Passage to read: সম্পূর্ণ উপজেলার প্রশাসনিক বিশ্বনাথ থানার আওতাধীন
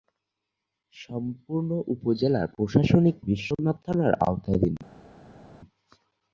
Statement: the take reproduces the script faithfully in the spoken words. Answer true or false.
true